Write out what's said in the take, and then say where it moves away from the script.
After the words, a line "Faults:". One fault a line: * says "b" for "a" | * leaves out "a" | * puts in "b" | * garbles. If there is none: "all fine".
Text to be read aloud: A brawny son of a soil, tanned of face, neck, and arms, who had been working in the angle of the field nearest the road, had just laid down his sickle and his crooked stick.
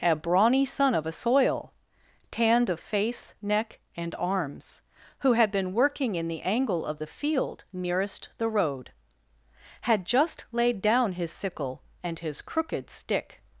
A brawny son of a soil, tanned of face, neck, and arms, who had been working in the angle of the field nearest the road, had just laid down his sickle and his crooked stick.
Faults:
all fine